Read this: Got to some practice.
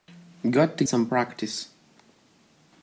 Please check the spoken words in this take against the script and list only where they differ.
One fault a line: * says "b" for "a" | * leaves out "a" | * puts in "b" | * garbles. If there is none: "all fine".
all fine